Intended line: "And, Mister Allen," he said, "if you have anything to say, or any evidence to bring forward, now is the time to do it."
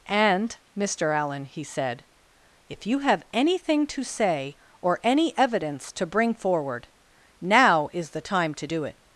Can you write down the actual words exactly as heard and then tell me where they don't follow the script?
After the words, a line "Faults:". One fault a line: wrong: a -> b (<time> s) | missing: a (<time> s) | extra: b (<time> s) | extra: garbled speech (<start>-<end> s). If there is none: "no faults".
"And, Mister Allen," he said, "if you have anything to say, or any evidence to bring forward, now is the time to do it."
Faults:
no faults